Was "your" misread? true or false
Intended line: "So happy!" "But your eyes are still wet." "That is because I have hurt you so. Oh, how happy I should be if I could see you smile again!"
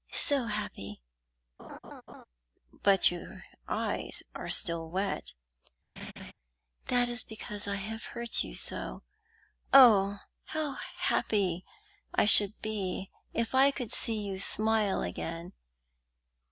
false